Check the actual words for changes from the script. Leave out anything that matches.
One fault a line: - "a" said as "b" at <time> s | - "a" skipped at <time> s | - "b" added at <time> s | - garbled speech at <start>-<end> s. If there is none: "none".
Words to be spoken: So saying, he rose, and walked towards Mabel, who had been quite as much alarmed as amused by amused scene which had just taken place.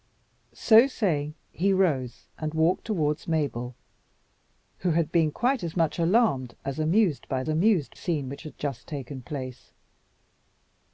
none